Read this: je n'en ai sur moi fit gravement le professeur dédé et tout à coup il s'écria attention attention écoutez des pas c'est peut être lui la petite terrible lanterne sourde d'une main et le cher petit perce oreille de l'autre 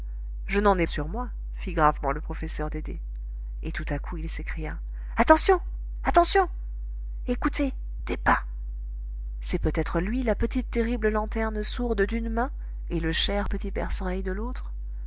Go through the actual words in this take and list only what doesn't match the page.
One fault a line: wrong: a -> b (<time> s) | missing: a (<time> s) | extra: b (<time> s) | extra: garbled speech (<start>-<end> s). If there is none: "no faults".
no faults